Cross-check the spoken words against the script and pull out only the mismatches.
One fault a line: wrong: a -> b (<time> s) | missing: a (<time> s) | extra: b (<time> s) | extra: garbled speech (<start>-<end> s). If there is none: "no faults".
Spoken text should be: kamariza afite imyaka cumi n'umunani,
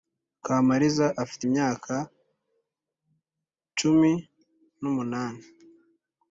no faults